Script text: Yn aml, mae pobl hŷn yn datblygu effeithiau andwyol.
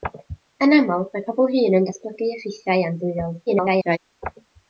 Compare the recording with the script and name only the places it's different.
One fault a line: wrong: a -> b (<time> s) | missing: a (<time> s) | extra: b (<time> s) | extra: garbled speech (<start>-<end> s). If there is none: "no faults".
extra: garbled speech (3.5-4.0 s)